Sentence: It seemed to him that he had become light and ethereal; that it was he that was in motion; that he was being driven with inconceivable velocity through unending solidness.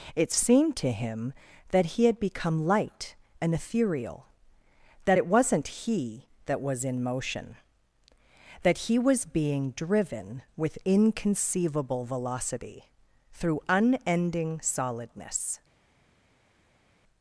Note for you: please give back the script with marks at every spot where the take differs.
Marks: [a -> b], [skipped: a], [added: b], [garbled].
It seemed to him that he had become light and ethereal; that it [was -> wasn't] he that was in motion; that he was being driven with inconceivable velocity through unending solidness.